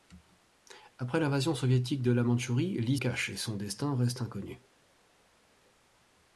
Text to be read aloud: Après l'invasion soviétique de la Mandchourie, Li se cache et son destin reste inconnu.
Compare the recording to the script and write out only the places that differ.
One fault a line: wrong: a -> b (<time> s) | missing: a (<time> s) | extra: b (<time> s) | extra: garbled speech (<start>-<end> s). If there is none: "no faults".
missing: se (3.0 s)